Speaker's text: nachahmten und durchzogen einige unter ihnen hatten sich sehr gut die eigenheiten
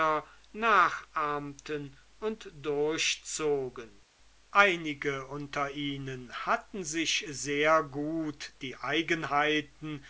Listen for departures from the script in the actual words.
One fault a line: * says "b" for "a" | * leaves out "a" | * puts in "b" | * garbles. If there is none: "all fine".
all fine